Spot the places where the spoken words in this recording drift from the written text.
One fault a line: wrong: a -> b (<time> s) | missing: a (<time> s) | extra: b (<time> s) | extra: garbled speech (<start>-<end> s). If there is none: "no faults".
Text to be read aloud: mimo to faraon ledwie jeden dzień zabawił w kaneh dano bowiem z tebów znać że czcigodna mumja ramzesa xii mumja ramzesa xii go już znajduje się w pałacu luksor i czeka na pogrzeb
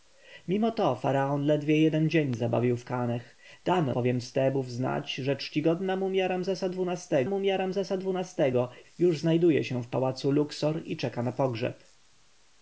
no faults